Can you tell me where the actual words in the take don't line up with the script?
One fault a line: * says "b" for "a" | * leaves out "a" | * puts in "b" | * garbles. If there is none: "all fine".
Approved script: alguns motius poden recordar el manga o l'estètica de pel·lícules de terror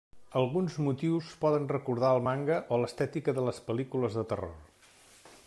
* puts in "les"